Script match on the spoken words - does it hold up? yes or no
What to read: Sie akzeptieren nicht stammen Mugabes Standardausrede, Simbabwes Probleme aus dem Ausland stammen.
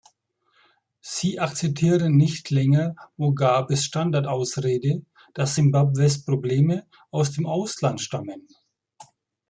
no